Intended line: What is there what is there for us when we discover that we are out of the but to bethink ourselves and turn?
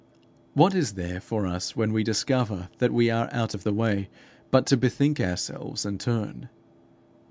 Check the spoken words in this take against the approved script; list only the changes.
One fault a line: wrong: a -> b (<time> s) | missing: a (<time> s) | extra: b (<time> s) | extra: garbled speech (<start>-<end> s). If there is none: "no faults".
missing: what is there (1.2 s)
extra: way (3.7 s)